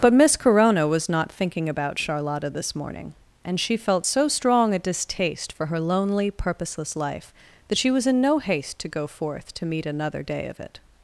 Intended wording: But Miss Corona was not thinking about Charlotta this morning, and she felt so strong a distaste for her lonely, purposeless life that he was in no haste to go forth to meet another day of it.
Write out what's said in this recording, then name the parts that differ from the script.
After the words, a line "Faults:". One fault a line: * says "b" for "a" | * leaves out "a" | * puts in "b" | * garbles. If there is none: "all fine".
But Miss Corona was not thinking about Charlotta this morning, and she felt so strong a distaste for her lonely, purposeless life that she was in no haste to go forth to meet another day of it.
Faults:
* says "she" for "he"